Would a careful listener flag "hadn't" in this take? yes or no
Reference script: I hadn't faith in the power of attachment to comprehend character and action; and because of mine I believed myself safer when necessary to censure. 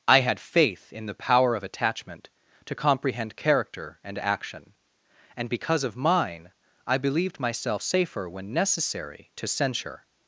yes